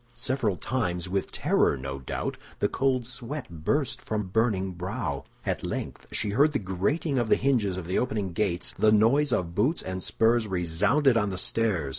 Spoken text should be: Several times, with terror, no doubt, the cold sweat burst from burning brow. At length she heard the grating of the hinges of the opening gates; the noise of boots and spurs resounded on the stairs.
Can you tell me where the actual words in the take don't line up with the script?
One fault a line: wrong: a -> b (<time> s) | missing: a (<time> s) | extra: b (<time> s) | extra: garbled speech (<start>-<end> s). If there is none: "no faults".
no faults